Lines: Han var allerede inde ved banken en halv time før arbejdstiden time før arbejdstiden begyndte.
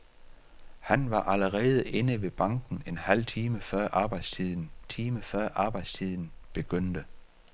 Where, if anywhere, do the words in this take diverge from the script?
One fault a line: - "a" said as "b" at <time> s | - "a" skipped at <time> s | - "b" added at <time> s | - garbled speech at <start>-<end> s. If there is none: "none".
none